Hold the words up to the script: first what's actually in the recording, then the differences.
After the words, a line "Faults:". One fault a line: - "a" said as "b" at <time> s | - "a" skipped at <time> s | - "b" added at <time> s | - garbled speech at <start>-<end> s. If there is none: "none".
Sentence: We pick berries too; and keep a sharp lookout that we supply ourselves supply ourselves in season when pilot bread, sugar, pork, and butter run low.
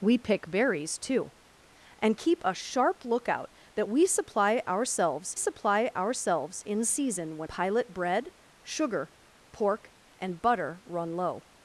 We pick berries too; and keep a sharp lookout that we supply ourselves supply ourselves in season when pilot bread, sugar, pork, and butter run low.
Faults:
none